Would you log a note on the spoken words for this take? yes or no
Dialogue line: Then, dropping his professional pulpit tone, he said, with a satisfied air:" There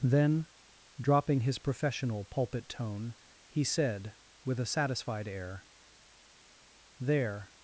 no